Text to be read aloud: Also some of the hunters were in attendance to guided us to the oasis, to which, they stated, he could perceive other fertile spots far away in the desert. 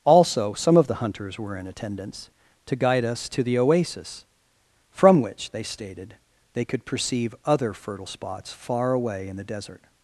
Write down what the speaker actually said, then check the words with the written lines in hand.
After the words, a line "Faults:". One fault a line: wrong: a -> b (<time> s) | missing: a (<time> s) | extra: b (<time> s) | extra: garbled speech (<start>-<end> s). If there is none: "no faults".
Also some of the hunters were in attendance to guide us to the oasis, from which, they stated, they could perceive other fertile spots far away in the desert.
Faults:
wrong: guided -> guide (2.8 s)
wrong: to -> from (4.9 s)
wrong: he -> they (6.5 s)